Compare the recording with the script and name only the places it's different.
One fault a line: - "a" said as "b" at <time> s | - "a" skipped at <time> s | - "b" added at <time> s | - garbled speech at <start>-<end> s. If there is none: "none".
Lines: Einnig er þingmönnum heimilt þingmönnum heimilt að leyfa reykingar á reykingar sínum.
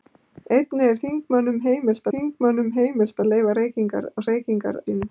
none